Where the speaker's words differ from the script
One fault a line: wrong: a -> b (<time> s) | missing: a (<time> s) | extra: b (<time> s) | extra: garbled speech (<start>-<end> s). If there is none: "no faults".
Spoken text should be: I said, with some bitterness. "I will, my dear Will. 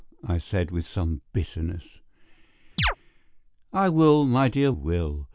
no faults